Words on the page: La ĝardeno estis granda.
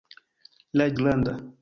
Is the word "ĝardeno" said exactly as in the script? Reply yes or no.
no